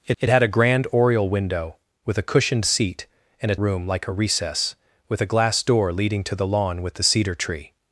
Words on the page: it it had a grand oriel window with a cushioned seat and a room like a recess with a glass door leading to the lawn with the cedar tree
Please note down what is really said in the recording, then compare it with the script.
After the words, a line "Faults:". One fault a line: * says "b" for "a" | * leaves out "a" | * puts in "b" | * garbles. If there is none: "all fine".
it it had a grand oriel window with a cushioned seat and a room like a recess with a glass door leading to the lawn with the cedar tree
Faults:
all fine